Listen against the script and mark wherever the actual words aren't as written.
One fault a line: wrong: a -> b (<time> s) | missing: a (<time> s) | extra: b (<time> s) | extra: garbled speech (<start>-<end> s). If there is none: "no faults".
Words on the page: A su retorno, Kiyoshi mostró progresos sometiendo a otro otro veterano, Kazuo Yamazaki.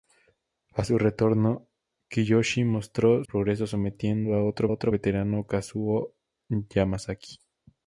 no faults